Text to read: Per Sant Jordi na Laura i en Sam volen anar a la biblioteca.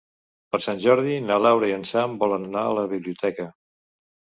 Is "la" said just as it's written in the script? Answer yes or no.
yes